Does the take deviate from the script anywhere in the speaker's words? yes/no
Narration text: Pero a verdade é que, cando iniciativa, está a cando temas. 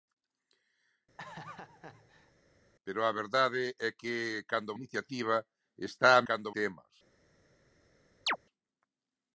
no